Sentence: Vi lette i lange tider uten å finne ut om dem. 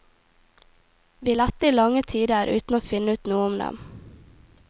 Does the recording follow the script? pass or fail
fail